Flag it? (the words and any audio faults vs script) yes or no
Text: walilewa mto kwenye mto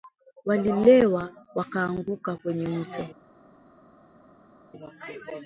yes